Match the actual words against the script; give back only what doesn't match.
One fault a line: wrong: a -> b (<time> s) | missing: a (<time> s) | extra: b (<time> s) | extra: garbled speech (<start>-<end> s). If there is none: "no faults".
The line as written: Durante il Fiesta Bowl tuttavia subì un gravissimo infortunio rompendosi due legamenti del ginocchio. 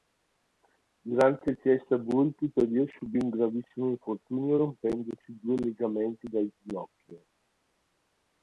no faults